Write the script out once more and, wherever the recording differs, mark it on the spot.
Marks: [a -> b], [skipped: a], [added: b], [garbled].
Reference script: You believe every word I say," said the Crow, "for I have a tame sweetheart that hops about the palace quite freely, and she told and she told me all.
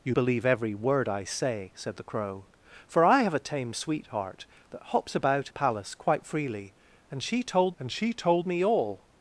You believe every word I say," said the Crow, "for I have a tame sweetheart that hops about the palace quite freely, and she told and she told me all.